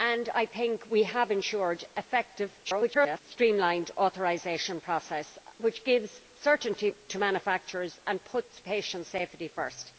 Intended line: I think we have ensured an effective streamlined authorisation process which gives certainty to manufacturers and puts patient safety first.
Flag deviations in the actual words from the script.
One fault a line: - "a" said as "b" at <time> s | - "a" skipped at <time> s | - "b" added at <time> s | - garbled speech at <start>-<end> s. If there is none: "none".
- garbled speech at 2.6-3.2 s